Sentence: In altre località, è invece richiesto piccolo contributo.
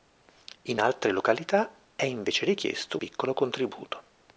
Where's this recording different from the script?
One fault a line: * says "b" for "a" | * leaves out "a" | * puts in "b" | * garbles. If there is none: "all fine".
all fine